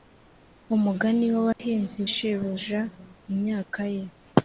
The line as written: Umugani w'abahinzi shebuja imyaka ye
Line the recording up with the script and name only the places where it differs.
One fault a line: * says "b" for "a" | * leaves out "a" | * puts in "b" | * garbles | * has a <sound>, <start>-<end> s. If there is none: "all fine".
* has a dropout, 1.5-1.6 s